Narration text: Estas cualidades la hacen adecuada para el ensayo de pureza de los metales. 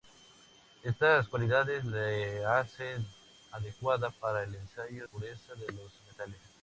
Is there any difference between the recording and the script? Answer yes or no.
yes